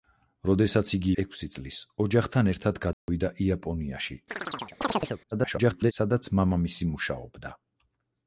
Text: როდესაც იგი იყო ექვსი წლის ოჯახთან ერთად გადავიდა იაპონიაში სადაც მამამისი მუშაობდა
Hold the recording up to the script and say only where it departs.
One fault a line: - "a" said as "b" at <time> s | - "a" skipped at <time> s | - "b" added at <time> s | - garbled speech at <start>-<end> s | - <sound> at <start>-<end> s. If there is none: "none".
- "იყო" skipped at 1.1 s
- dropout at 2.9-3.1 s
- chirp at 4.3-5.2 s
- garbled speech at 5.3-5.9 s